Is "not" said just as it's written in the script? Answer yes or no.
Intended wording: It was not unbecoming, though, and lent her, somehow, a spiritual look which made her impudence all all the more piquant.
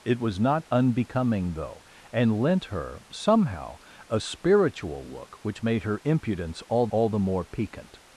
yes